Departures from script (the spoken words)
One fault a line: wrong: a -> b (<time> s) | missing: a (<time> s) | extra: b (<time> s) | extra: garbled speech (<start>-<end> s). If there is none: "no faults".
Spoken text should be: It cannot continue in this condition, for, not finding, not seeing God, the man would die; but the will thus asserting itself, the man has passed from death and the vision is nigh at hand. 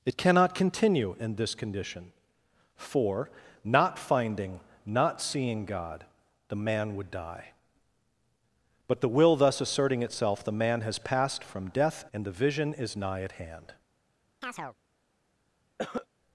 no faults